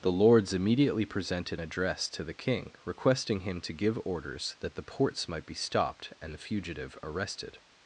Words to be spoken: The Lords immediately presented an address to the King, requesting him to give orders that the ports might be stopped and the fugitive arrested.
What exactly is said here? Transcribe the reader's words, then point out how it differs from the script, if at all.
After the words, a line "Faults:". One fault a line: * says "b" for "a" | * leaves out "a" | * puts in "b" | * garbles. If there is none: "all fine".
The Lords immediately presented address to the King, requesting him to give orders that the ports might be stopped and the fugitive arrested.
Faults:
* leaves out "an"